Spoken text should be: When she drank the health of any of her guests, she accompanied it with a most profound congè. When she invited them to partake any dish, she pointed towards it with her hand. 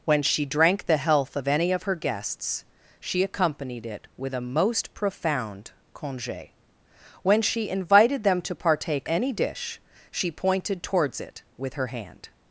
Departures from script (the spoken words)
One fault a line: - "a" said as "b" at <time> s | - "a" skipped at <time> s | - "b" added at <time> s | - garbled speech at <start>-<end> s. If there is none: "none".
none